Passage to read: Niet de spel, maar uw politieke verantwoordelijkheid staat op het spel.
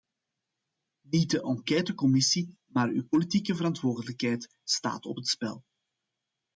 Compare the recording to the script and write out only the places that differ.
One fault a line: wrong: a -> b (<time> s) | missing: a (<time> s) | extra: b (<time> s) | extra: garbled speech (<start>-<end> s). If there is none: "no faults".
wrong: spel -> enquêtecommissie (1.4 s)